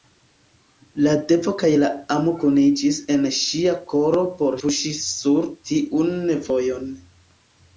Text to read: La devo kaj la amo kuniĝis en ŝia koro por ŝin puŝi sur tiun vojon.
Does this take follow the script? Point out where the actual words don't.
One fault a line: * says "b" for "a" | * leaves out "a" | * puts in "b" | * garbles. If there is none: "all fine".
* leaves out "ŝin"